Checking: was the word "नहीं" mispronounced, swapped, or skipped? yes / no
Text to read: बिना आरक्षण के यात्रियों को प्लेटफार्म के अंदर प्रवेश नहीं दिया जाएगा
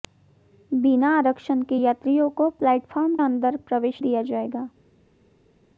yes